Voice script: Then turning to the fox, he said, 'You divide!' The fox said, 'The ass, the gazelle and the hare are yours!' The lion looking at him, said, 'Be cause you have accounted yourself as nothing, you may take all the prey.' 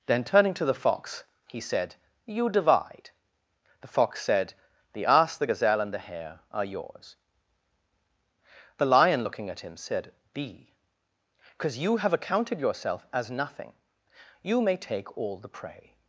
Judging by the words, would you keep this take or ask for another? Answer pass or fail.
pass